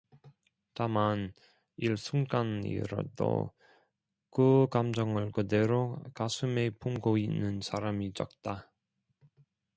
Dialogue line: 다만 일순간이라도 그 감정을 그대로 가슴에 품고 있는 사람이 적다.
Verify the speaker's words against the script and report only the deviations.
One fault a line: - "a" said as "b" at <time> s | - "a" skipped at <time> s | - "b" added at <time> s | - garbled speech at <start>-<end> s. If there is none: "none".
none